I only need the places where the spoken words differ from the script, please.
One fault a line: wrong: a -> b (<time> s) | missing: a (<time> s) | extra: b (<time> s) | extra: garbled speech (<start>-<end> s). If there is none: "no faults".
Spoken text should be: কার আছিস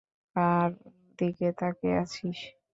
extra: দিকে তাকিয়ে (1.2 s)